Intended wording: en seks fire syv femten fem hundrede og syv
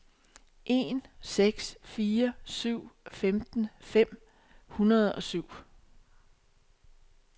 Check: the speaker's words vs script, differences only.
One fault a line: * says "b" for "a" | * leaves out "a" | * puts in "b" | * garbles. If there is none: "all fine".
all fine